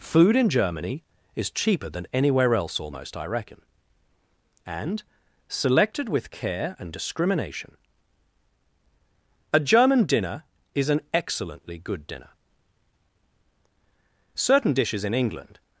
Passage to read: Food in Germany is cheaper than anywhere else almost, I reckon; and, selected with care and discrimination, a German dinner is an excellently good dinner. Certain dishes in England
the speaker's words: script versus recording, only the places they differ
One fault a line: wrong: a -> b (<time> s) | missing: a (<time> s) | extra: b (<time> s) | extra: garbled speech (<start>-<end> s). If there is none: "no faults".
no faults